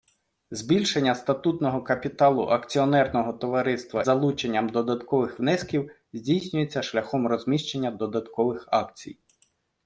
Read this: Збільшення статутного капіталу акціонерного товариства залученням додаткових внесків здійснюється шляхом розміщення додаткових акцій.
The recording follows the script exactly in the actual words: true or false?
true